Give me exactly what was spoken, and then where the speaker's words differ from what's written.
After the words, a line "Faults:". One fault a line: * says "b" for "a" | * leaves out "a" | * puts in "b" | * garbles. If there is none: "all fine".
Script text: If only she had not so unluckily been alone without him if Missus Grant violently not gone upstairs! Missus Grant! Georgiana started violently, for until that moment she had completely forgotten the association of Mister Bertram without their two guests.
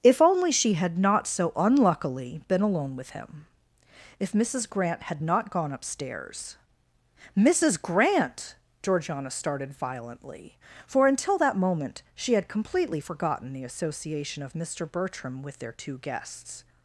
If only she had not so unluckily been alone with him if Missus Grant had not gone upstairs! Missus Grant! Georgiana started violently, for until that moment she had completely forgotten the association of Mister Bertram with their two guests.
Faults:
* says "with" for "without"
* says "had" for "violently"
* says "with" for "without"